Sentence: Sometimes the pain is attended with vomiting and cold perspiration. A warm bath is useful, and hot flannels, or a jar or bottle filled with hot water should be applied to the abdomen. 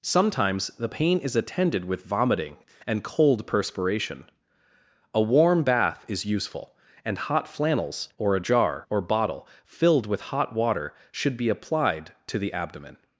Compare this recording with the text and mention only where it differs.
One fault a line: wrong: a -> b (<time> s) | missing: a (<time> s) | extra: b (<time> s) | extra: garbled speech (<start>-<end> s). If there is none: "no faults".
no faults